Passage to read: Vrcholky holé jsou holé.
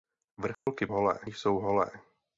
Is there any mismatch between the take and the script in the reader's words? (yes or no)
no